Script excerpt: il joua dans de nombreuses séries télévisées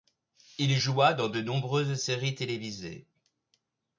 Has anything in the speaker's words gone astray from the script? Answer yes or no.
no